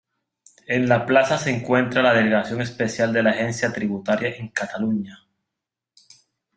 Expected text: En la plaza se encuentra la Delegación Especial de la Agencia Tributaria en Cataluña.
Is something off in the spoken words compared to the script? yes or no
no